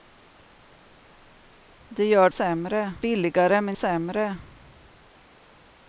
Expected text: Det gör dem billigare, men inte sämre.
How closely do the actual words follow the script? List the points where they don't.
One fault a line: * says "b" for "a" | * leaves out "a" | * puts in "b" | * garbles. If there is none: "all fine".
* says "sämre" for "dem"
* leaves out "inte"